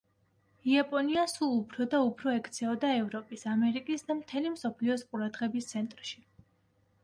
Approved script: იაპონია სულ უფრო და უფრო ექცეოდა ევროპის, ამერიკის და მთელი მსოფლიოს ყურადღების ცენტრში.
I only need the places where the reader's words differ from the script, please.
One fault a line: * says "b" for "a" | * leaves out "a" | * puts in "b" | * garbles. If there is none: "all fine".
all fine